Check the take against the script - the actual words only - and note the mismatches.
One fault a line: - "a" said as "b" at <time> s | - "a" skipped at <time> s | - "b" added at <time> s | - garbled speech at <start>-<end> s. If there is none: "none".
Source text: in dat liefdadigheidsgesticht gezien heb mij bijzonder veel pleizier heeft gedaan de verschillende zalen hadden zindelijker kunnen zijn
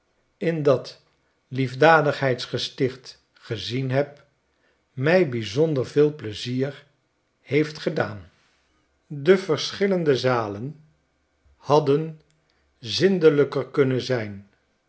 none